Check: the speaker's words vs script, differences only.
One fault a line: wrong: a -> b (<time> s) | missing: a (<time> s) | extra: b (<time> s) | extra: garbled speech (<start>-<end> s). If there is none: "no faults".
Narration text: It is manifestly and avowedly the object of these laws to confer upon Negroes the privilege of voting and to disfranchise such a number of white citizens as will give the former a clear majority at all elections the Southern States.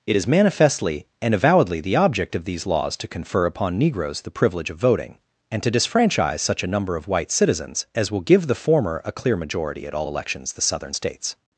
no faults